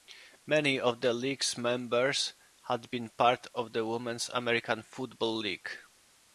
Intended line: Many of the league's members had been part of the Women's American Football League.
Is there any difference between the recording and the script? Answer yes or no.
no